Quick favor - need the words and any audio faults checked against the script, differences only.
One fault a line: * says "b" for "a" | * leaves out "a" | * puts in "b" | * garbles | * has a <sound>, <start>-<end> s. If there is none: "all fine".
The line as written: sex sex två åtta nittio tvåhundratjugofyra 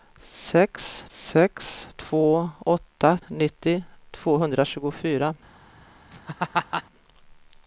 * has a laugh, 6.1-6.8 s